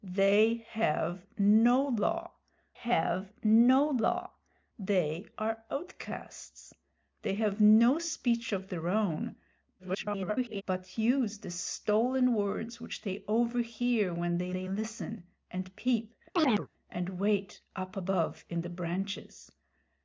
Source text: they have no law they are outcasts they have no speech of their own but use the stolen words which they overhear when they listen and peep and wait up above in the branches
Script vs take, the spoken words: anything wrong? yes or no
yes